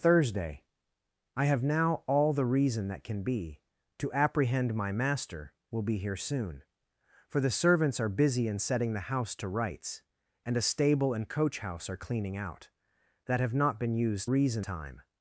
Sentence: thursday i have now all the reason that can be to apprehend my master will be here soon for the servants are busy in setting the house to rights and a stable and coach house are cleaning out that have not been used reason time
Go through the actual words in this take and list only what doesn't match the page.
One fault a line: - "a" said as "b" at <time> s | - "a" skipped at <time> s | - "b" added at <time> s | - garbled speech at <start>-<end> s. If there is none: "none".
none